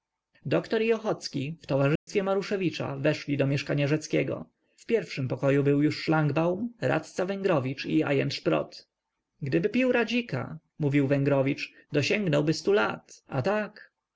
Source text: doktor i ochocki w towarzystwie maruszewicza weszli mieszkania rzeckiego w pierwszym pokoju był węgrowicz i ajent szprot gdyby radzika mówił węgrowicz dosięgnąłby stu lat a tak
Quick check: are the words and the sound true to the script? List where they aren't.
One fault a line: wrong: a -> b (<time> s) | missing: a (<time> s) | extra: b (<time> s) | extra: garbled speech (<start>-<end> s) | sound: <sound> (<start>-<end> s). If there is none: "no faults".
sound: dropout (2.0-2.1 s)
extra: do (3.4 s)
extra: już szlangbaum radca (5.8 s)
extra: pił (9.7 s)